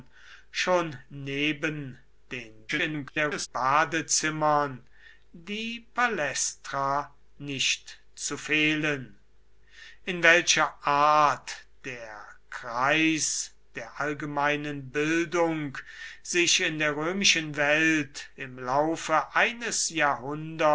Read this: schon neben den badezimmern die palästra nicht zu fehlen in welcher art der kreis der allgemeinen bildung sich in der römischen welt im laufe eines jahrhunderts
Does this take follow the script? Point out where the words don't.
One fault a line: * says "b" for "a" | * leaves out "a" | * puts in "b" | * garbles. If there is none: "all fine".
* garbles